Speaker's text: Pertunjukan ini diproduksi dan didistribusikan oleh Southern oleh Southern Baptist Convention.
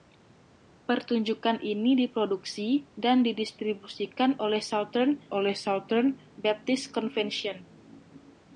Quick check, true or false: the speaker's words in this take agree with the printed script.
true